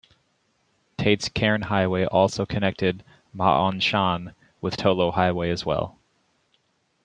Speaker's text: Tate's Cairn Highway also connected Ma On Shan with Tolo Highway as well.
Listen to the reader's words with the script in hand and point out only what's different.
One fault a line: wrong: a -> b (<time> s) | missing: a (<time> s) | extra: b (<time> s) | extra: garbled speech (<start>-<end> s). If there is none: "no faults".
no faults